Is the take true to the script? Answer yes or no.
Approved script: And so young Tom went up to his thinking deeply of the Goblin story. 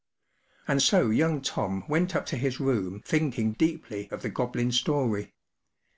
no